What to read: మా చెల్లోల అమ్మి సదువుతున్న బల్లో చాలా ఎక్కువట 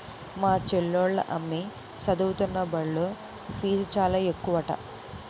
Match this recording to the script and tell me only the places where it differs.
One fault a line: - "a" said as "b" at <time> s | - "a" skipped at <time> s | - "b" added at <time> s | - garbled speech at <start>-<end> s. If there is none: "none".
- "ఫీజు" added at 3.6 s